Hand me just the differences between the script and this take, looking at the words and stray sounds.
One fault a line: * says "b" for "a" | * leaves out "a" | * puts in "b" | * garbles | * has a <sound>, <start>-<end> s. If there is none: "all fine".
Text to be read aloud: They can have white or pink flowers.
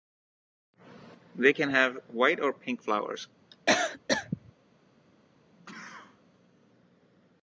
* has a cough, 3.5-4.5 s
* has a sneeze, 5.5-6.2 s